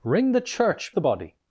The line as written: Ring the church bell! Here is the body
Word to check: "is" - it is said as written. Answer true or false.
false